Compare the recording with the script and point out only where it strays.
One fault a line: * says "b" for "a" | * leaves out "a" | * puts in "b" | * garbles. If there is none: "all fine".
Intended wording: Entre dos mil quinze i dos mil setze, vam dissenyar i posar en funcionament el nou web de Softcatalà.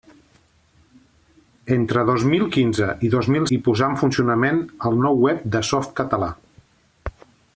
* leaves out "setze vam dissenyar"